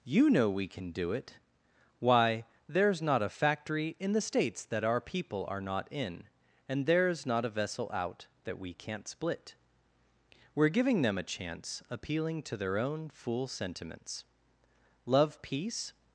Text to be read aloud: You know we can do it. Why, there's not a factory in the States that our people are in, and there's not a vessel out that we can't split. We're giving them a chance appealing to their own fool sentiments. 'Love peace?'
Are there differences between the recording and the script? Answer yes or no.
yes